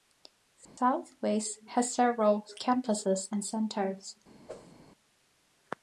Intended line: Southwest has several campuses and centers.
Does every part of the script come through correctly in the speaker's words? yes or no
yes